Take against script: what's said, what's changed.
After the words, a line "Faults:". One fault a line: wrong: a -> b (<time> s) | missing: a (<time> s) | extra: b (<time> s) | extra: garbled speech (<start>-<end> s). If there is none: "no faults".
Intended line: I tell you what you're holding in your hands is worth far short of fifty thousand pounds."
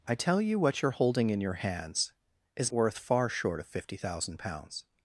I tell you what you're holding in your hands is worth far short of fifty thousand pounds."
Faults:
no faults